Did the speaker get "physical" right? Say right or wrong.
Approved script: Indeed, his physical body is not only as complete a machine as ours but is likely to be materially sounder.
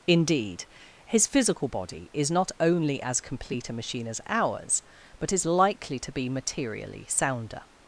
right